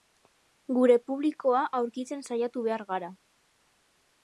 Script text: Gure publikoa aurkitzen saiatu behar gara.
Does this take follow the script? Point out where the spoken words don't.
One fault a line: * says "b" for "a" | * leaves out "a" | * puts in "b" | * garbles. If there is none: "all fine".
all fine